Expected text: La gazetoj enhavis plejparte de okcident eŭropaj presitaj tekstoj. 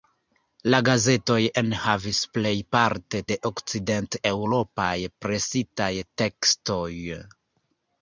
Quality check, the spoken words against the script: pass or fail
pass